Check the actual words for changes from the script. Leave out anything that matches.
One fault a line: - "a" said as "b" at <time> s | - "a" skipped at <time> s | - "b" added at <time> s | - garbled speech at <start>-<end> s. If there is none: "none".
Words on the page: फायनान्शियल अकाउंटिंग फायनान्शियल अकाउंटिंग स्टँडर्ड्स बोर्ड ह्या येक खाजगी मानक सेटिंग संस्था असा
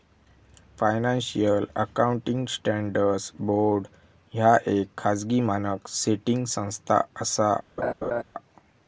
- "फायनान्शियल अकाउंटिंग" skipped at 2.5 s